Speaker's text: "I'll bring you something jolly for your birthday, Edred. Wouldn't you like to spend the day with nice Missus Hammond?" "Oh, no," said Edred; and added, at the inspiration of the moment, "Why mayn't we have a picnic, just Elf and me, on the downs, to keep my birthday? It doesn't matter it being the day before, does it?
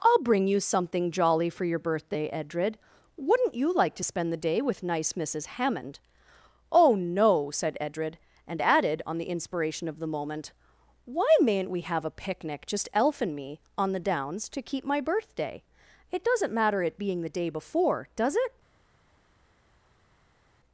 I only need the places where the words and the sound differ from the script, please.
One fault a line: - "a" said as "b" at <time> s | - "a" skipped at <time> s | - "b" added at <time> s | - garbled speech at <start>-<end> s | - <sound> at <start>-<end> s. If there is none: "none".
- "at" said as "on" at 9.0 s